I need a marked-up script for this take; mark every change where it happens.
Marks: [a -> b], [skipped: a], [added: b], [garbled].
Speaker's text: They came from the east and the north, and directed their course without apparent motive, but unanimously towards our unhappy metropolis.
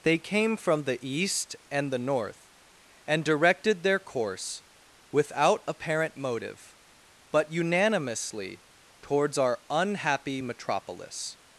They came from the east and the north, and directed their course without apparent motive, but unanimously towards our unhappy metropolis.